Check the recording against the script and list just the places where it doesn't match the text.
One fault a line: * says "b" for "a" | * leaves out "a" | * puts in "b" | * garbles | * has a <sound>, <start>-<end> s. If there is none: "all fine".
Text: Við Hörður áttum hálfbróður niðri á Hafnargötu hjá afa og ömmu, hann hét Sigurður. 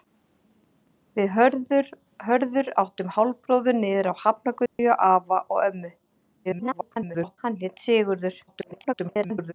* has a dropout, 4.7-4.8 s
* garbles
* garbles